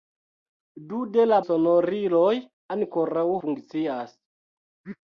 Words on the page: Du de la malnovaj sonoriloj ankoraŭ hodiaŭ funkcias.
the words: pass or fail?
fail